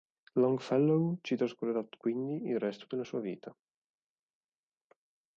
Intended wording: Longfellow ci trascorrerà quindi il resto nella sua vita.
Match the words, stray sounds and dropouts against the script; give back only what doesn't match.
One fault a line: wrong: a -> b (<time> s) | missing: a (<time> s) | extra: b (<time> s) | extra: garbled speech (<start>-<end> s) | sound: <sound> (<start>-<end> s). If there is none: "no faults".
wrong: nella -> della (2.9 s)